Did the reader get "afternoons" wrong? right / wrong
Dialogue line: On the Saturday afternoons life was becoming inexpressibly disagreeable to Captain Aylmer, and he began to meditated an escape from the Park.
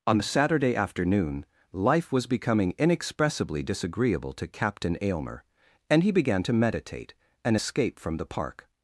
wrong